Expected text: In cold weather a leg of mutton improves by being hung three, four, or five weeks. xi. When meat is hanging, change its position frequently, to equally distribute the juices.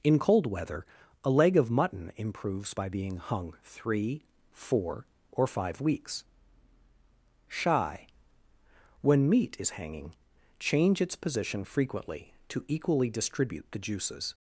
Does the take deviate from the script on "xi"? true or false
true